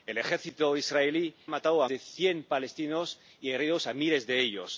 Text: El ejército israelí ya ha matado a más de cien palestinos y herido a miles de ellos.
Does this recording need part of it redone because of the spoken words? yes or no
yes